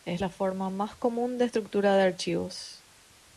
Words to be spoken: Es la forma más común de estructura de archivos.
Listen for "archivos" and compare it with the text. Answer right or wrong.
right